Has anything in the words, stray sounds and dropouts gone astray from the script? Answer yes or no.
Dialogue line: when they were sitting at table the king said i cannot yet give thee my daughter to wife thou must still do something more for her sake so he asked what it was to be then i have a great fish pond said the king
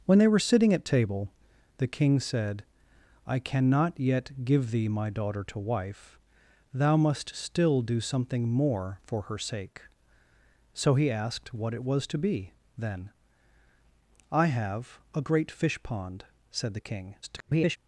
yes